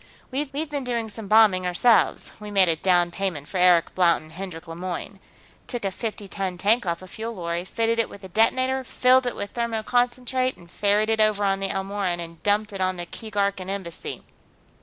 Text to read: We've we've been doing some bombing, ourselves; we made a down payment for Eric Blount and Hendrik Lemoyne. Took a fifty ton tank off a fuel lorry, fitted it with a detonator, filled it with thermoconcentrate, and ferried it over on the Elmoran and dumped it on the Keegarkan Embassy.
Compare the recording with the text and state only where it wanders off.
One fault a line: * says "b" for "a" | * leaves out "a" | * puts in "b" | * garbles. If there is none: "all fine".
all fine